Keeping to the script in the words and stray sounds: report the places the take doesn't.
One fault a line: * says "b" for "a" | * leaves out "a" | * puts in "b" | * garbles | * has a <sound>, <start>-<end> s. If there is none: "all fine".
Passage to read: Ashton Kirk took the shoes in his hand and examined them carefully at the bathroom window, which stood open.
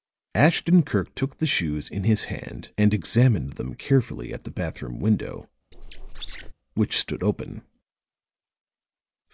* has a squeak, 5.7-6.5 s